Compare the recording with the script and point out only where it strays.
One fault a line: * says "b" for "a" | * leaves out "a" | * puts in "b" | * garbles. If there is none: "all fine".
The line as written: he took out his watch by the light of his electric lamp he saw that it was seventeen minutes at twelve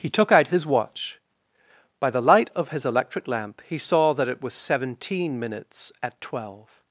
all fine